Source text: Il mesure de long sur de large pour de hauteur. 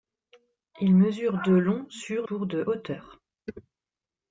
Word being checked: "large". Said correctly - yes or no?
no